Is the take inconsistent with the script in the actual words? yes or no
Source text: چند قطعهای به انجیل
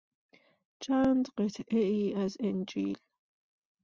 yes